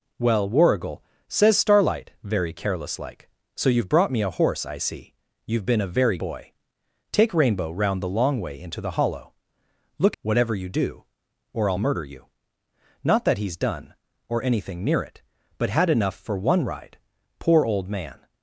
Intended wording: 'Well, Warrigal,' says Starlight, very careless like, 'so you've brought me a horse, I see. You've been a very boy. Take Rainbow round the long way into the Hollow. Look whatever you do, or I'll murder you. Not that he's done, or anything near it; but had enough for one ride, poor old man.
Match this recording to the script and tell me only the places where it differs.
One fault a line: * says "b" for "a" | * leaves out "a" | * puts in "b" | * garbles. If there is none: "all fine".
all fine